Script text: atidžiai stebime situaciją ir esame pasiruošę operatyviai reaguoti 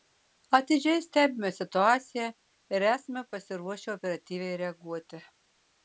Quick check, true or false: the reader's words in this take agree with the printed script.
true